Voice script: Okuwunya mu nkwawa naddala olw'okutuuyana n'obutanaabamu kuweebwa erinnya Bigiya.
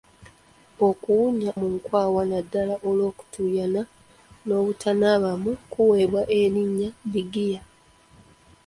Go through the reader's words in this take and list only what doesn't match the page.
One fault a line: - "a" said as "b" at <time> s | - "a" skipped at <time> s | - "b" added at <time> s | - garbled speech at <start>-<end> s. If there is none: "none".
none